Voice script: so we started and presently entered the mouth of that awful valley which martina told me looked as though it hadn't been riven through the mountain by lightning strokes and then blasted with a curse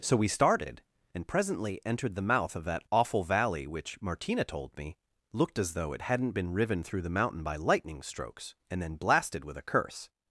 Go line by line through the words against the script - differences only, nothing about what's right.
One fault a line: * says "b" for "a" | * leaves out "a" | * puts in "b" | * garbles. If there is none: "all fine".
all fine